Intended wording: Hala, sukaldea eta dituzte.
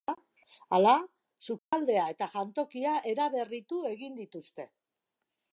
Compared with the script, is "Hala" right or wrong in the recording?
right